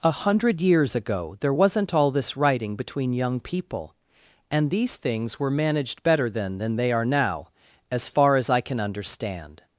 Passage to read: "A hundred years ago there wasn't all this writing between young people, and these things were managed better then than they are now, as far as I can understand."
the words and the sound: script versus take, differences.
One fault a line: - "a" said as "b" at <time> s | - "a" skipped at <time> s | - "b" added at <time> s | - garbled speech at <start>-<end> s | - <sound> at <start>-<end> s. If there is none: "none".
none